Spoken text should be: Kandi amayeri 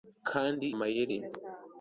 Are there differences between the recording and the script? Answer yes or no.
no